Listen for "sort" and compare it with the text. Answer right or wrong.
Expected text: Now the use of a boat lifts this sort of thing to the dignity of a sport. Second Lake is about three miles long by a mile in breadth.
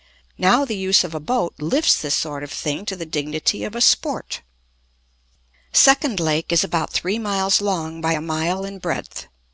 right